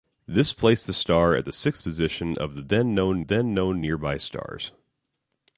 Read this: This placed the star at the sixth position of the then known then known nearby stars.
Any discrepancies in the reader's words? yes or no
no